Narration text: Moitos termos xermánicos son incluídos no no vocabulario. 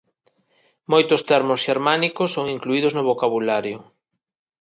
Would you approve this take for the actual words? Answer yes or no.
no